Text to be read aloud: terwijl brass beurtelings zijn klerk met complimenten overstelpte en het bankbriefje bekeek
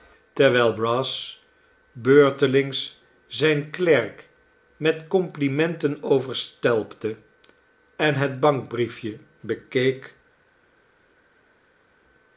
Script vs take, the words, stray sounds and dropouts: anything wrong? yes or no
no